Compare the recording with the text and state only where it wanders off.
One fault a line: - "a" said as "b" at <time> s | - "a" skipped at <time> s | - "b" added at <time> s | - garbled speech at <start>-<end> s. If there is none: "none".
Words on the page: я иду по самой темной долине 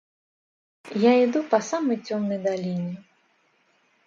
none